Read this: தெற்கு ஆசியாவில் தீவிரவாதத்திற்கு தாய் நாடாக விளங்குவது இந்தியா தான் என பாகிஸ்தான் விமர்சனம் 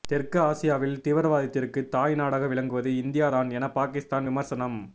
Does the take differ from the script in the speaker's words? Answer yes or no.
no